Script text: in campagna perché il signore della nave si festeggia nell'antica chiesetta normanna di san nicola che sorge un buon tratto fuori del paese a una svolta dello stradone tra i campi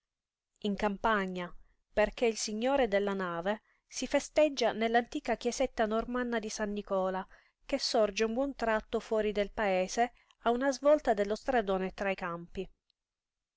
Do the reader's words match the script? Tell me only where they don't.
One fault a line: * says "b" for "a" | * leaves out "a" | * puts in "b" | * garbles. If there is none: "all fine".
all fine